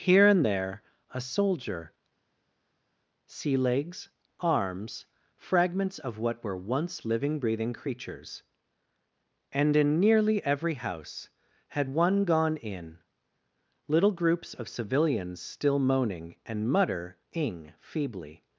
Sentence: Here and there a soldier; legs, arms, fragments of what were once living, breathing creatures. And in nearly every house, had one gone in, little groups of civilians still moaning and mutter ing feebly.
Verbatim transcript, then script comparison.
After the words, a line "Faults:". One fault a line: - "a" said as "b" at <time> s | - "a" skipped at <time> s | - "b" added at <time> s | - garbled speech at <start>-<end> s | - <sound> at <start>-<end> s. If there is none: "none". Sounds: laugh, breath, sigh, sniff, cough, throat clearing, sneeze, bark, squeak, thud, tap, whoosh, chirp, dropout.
Here and there a soldier; sea legs, arms, fragments of what were once living, breathing creatures. And in nearly every house, had one gone in, little groups of civilians still moaning and mutter ing feebly.
Faults:
- "sea" added at 3.3 s